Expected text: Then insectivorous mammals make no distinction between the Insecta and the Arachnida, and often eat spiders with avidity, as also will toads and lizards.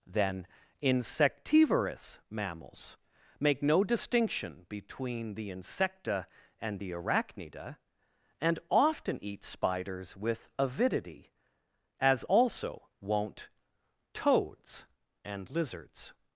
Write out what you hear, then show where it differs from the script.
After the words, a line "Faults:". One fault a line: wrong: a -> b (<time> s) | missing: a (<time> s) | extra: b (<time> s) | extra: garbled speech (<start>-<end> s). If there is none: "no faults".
Then insectivorous mammals make no distinction between the Insecta and the Arachnida, and often eat spiders with avidity, as also won't toads and lizards.
Faults:
wrong: will -> won't (13.0 s)